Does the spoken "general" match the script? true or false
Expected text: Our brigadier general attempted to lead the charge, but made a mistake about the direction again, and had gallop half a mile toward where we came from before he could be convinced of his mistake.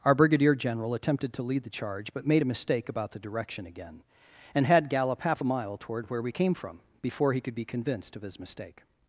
true